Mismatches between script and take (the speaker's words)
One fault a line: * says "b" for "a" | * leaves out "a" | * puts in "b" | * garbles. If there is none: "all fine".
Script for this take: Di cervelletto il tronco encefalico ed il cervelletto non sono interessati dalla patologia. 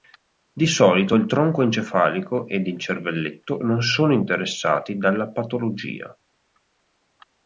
* says "solito" for "cervelletto"